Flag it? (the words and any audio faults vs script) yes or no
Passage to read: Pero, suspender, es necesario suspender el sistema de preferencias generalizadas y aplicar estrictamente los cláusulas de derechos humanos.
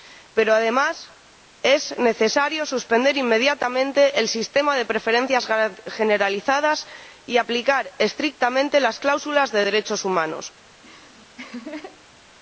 yes